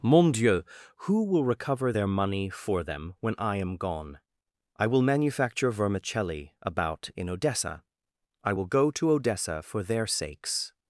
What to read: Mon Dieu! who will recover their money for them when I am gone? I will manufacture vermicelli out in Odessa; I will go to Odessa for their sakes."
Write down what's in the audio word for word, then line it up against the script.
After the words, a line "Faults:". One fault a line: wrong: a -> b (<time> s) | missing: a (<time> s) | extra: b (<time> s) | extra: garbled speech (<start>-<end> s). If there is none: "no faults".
Mon Dieu! who will recover their money for them when I am gone? I will manufacture vermicelli about in Odessa; I will go to Odessa for their sakes."
Faults:
wrong: out -> about (6.6 s)